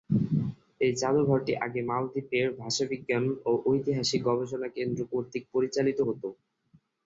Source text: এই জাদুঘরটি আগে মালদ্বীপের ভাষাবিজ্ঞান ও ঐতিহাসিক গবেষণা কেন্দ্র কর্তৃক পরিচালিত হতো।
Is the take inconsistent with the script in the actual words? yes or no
no